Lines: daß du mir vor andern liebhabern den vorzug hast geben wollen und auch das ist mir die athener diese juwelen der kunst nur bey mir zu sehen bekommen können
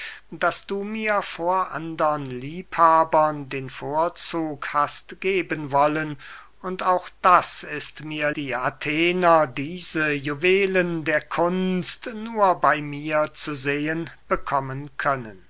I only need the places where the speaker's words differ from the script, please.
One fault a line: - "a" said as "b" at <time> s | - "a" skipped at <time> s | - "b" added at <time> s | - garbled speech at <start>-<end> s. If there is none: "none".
none